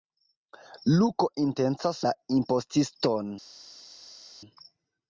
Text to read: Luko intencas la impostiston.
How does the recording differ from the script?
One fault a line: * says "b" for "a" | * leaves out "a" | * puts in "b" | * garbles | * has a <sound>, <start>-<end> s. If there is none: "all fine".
all fine